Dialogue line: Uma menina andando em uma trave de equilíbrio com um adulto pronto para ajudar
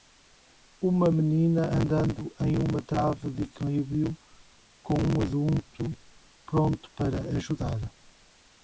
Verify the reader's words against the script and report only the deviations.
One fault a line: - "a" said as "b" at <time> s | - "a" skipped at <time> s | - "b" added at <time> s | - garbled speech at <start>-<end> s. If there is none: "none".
none